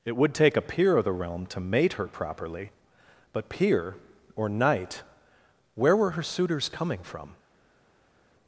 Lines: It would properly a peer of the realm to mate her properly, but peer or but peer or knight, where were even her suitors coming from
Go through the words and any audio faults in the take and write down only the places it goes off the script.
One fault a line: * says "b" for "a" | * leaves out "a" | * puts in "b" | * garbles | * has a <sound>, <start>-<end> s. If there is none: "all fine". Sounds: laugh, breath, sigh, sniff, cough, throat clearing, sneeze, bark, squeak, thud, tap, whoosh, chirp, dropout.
* says "take" for "properly"
* leaves out "but peer or"
* leaves out "even"